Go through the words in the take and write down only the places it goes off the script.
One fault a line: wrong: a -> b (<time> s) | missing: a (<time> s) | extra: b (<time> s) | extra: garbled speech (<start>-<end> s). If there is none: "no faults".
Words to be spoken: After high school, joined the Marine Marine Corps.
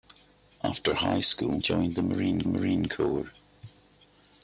no faults